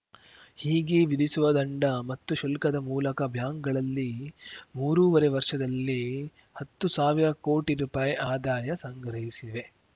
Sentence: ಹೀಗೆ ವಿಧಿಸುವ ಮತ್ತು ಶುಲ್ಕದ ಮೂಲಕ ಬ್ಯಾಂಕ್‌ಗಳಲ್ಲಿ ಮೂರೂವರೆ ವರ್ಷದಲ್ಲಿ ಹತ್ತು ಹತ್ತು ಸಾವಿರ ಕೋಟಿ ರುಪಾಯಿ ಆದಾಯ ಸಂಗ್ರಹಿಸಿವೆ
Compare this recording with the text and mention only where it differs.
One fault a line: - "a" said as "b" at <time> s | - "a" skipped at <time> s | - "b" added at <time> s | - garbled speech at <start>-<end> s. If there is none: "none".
- "ದಂಡ" added at 1.5 s
- "ಹತ್ತು" skipped at 6.9 s